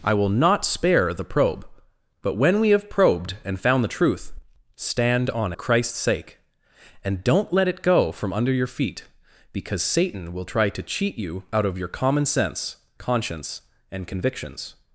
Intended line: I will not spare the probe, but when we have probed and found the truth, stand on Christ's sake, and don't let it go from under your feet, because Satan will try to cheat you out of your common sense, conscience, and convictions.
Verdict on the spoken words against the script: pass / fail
pass